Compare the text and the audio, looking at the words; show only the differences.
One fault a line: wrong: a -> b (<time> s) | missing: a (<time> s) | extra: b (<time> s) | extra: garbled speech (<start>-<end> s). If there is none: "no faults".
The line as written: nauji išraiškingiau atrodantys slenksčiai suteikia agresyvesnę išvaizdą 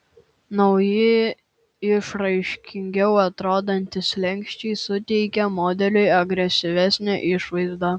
extra: modeliui (5.6 s)